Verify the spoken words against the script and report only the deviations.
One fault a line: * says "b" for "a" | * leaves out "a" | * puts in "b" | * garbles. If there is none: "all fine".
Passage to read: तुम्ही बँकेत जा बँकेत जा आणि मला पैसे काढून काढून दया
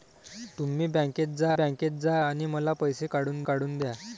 all fine